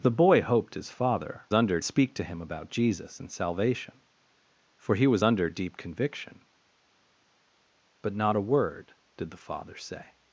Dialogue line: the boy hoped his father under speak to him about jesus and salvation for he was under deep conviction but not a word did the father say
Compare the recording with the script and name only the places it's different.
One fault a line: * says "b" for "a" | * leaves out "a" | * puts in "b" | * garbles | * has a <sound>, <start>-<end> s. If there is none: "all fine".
all fine